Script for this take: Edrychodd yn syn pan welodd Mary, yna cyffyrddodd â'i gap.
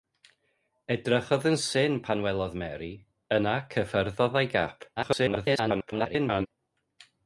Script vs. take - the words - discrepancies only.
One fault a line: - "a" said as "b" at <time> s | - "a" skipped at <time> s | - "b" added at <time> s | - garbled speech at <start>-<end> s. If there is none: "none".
- garbled speech at 5.0-6.5 s